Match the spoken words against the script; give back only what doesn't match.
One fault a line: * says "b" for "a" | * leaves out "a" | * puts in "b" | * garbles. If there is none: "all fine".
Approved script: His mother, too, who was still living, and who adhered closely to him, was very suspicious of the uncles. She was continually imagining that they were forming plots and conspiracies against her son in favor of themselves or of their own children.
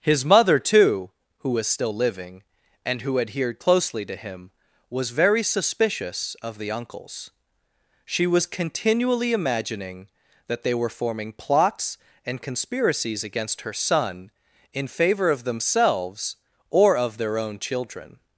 all fine